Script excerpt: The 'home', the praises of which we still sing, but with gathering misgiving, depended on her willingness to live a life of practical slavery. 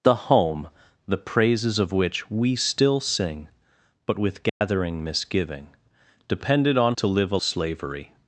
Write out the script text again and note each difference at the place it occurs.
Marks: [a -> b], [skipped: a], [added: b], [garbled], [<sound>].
The 'home', the praises of which we still sing, but with gathering [dropout] misgiving, depended on [skipped: her willingness] to live a [skipped: life of practical] slavery.